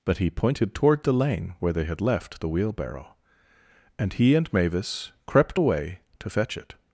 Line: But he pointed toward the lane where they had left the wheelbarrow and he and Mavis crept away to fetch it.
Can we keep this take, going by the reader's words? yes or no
yes